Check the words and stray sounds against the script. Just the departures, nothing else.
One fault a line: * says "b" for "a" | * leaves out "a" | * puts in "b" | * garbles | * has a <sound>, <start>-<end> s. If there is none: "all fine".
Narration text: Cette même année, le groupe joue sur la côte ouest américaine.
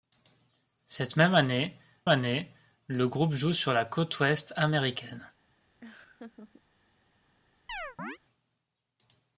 * puts in "année"
* has a laugh, 5.8-6.6 s
* has a chirp, 7.7-8.2 s